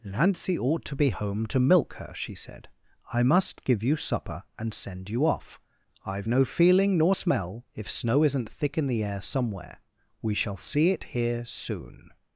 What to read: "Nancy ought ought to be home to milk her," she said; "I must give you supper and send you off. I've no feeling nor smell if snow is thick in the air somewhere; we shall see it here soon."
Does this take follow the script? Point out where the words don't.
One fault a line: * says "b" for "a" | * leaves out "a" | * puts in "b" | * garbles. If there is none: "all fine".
* leaves out "ought"
* says "isn't" for "is"